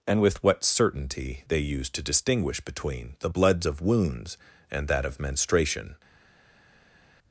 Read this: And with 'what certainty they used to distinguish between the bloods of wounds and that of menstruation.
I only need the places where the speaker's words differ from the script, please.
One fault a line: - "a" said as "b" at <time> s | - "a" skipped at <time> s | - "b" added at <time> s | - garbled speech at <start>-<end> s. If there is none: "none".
none